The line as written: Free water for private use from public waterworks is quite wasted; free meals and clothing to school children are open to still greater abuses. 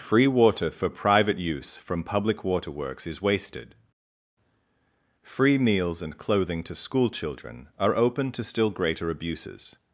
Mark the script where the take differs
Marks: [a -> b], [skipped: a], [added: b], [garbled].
Free water for private use from public waterworks is [skipped: quite] wasted; free meals and clothing to school children are open to still greater abuses.